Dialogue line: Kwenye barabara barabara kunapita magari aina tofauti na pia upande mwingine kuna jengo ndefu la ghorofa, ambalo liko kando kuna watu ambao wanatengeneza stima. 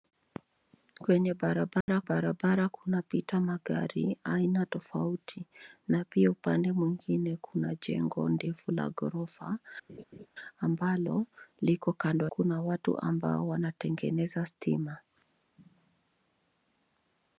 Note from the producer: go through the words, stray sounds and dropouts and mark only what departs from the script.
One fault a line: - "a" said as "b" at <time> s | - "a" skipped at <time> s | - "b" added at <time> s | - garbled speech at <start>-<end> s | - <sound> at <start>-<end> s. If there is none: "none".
- dropout at 1.8-1.9 s
- laugh at 9.9-10.3 s